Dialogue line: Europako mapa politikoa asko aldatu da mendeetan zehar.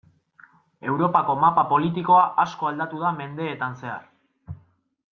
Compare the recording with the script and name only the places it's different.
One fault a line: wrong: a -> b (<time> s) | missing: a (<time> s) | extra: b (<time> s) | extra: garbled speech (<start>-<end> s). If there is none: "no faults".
no faults